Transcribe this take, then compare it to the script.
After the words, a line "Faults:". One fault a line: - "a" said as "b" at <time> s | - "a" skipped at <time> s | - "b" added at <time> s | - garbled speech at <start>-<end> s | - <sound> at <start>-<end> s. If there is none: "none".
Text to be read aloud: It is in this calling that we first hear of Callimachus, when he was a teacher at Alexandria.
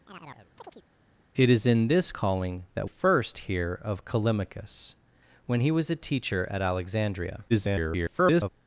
It is in this calling that first hear of Callimachus, when he was a teacher at Alexandria. [garbled]
Faults:
- chirp at 0.1-0.8 s
- "we" skipped at 2.9 s
- garbled speech at 7.5-8.5 s